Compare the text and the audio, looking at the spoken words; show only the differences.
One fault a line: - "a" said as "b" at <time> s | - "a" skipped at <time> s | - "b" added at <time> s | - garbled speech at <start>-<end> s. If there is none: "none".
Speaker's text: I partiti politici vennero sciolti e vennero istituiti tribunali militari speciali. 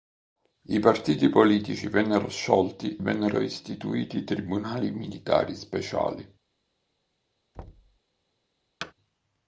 - "e" skipped at 3.0 s